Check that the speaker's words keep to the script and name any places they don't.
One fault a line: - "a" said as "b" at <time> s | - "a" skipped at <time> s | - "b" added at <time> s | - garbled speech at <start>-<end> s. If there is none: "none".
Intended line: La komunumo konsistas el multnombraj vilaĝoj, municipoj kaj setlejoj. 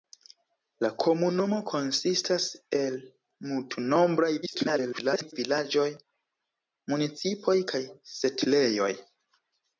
- garbled speech at 4.4-5.3 s